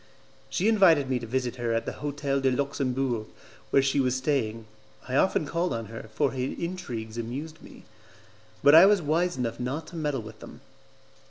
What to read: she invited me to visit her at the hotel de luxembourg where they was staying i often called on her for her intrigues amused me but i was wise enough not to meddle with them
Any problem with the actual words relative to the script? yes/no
yes